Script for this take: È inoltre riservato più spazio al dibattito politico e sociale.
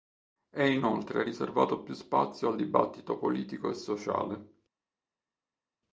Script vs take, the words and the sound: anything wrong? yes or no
no